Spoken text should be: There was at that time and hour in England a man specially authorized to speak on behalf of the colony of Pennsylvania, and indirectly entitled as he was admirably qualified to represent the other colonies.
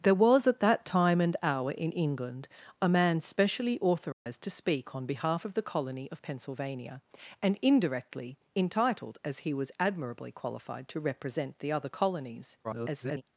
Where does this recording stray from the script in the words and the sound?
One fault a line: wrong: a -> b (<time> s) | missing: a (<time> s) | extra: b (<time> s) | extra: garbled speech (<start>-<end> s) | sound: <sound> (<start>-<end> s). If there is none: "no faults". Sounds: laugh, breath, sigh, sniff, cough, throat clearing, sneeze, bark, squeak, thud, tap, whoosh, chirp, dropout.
sound: dropout (4.1-4.3 s)
extra: garbled speech (12.6-13.2 s)